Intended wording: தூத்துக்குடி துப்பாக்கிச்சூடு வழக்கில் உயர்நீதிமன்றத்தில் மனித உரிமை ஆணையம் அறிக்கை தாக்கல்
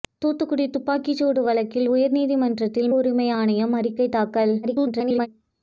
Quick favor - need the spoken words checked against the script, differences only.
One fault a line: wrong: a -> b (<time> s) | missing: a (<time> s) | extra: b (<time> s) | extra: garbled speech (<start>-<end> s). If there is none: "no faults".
missing: மனித (2.9 s)
extra: garbled speech (4.6-5.3 s)